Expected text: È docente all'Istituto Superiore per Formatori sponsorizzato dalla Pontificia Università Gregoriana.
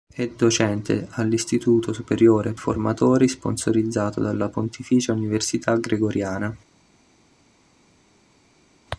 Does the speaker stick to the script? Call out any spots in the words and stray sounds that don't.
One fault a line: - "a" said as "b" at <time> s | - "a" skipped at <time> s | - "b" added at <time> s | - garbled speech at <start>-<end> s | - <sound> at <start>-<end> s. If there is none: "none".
- "per" skipped at 2.5 s